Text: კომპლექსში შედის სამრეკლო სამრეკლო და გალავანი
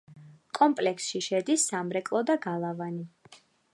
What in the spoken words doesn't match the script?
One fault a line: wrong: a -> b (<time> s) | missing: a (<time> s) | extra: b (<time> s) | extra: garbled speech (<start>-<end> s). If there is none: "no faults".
missing: სამრეკლო (2.2 s)